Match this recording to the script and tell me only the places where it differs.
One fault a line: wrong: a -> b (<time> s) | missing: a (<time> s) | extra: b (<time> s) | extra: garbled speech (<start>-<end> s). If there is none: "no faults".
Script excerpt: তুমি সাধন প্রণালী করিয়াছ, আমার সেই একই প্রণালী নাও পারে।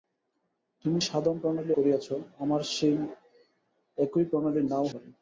no faults